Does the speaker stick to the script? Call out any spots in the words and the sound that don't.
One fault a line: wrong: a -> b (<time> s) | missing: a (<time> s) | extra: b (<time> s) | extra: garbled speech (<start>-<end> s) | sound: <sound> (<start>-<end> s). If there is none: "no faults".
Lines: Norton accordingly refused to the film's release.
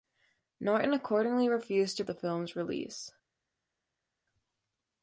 no faults